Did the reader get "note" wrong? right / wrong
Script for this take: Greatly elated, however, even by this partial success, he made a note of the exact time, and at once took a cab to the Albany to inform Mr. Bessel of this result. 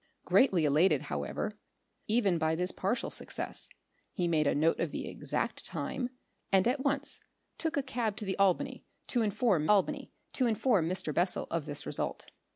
right